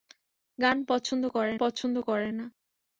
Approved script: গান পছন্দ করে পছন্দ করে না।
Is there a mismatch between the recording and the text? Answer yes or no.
no